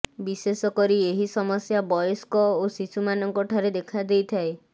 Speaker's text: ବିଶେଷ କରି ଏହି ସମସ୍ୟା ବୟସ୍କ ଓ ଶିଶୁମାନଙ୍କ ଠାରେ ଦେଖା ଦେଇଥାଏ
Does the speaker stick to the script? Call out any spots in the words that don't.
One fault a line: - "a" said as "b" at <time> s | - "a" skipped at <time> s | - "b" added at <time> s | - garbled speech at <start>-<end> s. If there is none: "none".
none